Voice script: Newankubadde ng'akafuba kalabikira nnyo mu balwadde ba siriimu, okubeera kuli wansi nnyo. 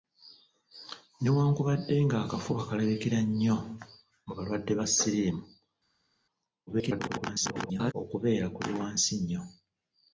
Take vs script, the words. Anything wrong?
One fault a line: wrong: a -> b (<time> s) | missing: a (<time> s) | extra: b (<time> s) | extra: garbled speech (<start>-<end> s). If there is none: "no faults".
extra: garbled speech (6.7-7.9 s)